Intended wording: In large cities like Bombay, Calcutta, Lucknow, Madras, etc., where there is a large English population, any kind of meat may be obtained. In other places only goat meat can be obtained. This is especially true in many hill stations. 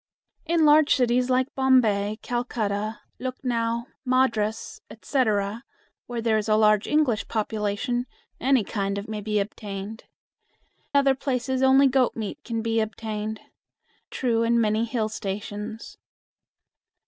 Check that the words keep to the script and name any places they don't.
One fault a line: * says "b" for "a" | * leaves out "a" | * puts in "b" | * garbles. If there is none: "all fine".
* leaves out "meat"
* leaves out "In"
* leaves out "This is especially"